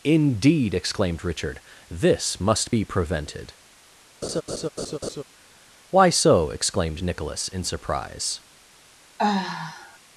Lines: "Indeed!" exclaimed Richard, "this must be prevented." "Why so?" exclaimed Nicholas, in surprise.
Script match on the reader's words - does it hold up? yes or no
yes